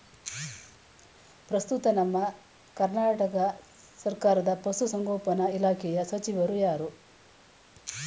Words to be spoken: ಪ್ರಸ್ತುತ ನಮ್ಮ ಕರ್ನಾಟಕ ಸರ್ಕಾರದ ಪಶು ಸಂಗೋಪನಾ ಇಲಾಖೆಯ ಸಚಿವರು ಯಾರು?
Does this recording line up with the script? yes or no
yes